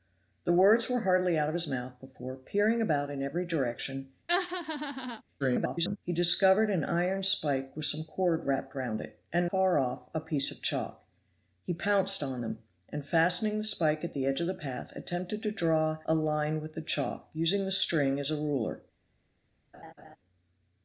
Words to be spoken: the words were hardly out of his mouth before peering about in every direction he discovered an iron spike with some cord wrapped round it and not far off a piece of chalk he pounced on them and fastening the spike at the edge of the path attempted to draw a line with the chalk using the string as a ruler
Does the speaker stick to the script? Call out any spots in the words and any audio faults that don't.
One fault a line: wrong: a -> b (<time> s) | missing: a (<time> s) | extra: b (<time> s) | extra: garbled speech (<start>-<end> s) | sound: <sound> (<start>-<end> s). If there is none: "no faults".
sound: laugh (4.3-5.2 s)
extra: garbled speech (5.4-6.0 s)
missing: not (9.5 s)
sound: laugh (19.7-20.2 s)